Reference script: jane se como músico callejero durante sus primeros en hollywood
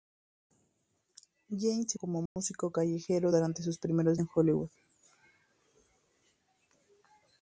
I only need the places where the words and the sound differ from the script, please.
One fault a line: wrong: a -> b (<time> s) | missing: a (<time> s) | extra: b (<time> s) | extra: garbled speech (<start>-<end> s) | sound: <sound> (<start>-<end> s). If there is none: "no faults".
sound: dropout (2.3-2.4 s)